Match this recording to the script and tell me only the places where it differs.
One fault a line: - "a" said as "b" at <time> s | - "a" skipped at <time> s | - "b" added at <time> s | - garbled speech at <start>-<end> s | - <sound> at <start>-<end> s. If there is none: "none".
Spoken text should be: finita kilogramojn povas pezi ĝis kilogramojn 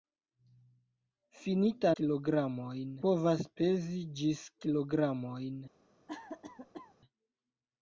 - cough at 6.1-6.9 s